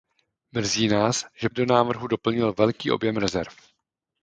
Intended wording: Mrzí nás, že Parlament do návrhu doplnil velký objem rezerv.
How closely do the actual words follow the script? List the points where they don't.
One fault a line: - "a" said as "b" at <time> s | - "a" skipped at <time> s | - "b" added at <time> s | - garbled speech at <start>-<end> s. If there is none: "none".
- "Parlament" skipped at 1.5 s